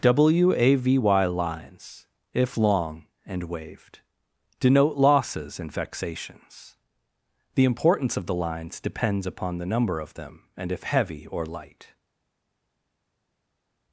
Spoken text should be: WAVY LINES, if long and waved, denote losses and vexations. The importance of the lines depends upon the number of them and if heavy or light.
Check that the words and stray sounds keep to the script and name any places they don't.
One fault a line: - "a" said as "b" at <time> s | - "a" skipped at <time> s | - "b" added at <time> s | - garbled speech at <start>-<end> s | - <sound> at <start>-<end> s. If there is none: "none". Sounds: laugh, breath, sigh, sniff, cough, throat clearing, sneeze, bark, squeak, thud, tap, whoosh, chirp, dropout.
none